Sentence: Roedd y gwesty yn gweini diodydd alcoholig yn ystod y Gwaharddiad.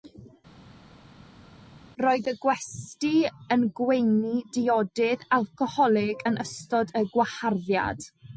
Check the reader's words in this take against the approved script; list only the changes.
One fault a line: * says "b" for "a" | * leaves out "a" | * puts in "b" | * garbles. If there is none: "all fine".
all fine